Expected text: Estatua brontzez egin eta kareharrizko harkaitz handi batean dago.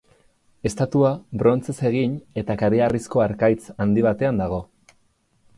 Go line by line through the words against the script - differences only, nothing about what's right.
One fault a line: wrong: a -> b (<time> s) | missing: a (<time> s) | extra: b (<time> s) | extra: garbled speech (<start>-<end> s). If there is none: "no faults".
no faults